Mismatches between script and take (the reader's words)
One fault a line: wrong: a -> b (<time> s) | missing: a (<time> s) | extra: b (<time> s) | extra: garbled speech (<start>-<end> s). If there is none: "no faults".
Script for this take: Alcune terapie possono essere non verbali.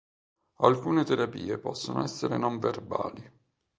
no faults